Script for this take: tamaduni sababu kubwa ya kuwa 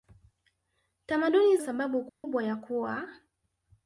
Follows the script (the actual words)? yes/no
yes